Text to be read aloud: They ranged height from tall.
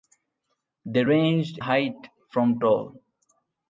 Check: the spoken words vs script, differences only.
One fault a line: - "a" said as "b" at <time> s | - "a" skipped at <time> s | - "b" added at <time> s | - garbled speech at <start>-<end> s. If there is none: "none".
none